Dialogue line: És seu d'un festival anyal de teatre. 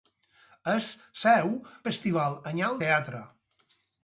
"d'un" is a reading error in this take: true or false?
true